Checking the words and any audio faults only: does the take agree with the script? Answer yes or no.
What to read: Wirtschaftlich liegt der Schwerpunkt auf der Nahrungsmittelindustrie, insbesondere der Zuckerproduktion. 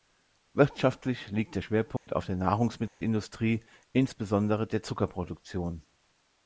no